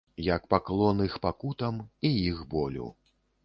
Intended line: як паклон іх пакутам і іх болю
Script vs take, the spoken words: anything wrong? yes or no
no